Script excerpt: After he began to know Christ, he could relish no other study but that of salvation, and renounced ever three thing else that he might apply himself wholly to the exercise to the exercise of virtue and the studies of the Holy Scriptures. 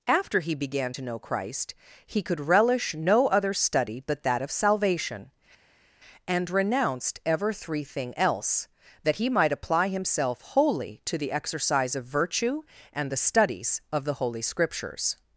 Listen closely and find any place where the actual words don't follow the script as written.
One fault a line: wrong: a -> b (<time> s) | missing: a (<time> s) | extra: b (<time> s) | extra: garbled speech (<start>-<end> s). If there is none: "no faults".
missing: to the exercise (11.9 s)